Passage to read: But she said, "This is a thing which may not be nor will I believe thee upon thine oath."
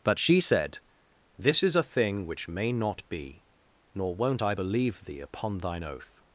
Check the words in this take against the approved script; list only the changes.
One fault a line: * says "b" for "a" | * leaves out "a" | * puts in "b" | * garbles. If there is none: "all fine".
* says "won't" for "will"